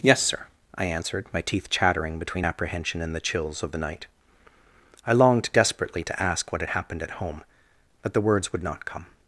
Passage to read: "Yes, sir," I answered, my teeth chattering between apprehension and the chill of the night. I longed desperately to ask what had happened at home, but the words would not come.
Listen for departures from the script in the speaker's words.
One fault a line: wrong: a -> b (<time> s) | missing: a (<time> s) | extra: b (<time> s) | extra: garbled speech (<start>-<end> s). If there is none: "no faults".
wrong: chill -> chills (3.2 s)